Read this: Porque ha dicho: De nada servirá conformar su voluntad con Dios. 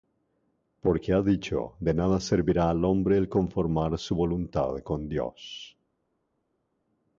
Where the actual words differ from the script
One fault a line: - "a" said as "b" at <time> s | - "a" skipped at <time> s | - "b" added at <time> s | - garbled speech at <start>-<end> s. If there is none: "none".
- "al hombre El" added at 2.7 s